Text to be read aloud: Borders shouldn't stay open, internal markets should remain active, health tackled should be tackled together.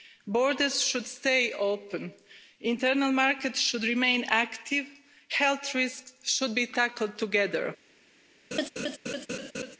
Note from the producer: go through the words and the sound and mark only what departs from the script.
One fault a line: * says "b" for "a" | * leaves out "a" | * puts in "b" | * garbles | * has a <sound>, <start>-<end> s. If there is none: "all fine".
* says "should" for "shouldn't"
* says "risks" for "tackled"
* has a laugh, 8.5-9.8 s